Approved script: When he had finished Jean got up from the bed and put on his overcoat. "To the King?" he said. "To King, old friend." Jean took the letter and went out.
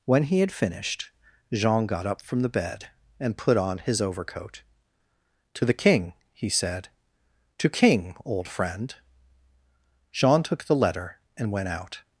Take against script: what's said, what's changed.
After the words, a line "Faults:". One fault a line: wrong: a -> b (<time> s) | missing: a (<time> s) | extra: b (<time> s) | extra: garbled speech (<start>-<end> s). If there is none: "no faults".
When he had finished Jean got up from the bed and put on his overcoat. "To the King?" he said. "To King, old friend." Jean took the letter and went out.
Faults:
no faults